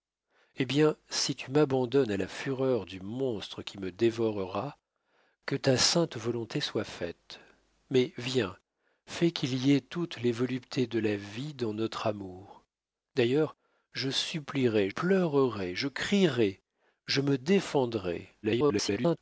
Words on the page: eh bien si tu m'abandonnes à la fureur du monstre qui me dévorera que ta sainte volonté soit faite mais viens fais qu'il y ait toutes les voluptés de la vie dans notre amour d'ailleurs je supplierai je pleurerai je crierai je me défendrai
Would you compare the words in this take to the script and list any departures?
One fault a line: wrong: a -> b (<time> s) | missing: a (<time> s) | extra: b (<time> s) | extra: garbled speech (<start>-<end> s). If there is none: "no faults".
missing: je (14.9 s)
extra: garbled speech (18.4-19.2 s)